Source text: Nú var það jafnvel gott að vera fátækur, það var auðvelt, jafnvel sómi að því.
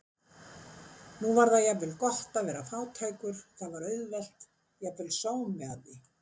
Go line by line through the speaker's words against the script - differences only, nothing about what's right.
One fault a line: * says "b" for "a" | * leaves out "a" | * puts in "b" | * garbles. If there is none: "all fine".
all fine